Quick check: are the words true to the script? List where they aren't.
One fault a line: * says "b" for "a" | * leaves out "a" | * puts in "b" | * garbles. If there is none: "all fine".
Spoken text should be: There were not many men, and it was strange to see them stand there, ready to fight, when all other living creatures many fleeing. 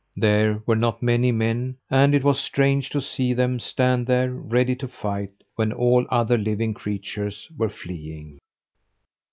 * says "were" for "many"